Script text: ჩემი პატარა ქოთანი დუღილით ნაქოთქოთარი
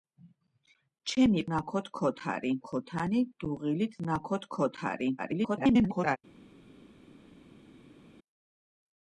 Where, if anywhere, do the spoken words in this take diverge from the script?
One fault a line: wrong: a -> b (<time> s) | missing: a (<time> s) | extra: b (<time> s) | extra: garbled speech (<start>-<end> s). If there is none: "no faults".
wrong: პატარა -> ნაქოთქოთარი (1.5 s)
extra: garbled speech (5.2-6.2 s)